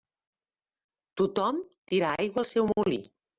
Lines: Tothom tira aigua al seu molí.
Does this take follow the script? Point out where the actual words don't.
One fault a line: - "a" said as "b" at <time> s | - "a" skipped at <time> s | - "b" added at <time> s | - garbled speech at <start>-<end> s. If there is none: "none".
none